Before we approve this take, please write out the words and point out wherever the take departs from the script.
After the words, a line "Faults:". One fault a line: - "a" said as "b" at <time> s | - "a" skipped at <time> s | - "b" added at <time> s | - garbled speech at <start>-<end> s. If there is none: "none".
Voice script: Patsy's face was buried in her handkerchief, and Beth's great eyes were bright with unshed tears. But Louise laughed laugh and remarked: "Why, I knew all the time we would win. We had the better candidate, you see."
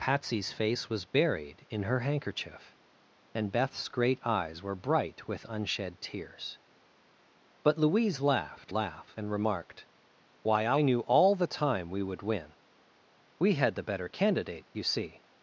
Patsy's face was buried in her handkerchief, and Beth's great eyes were bright with unshed tears. But Louise laughed laugh and remarked: "Why, I knew all the time we would win. We had the better candidate, you see."
Faults:
none